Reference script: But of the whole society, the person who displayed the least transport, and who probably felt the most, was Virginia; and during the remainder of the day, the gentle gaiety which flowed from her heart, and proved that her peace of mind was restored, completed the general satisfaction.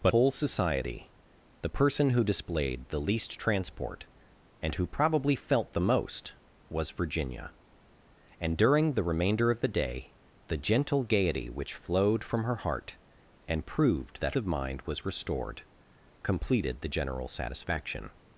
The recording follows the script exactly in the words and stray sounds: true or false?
false